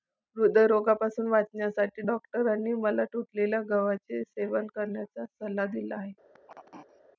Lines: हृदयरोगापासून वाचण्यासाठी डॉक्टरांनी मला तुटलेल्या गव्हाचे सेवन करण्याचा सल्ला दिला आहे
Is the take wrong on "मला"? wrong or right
right